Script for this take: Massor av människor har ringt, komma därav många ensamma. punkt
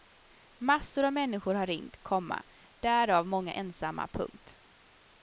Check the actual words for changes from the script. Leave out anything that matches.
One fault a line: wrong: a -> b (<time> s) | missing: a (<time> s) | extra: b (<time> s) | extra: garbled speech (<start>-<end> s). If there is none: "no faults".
no faults